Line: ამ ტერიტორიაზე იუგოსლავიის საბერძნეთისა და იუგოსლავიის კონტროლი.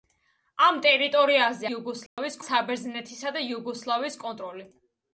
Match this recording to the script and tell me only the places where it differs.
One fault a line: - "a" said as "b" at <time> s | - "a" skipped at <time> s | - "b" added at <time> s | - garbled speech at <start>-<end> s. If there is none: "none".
none